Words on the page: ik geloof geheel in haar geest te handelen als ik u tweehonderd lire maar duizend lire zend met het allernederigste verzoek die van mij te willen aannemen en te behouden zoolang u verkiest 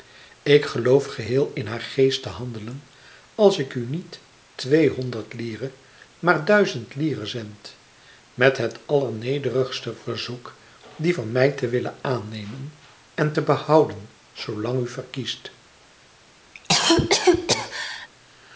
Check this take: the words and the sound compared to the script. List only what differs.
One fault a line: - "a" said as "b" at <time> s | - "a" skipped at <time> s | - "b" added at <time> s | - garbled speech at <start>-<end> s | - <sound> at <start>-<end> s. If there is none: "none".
- "niet" added at 3.9 s
- cough at 16.5-18.1 s